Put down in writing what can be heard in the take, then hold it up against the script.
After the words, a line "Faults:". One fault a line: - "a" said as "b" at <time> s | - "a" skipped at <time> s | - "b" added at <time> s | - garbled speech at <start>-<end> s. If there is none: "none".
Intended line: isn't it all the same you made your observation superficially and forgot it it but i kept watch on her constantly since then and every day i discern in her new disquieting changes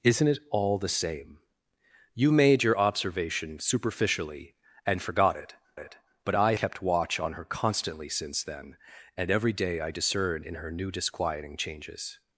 isn't it all the same you made your observation superficially and forgot it it but i kept watch on her constantly since then and every day i discern in her new disquieting changes
Faults:
none